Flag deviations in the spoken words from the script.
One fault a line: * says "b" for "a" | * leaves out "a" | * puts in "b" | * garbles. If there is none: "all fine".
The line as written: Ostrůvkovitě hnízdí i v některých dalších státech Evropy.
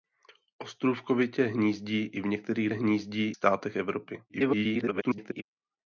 * says "hnízdí" for "dalších"
* garbles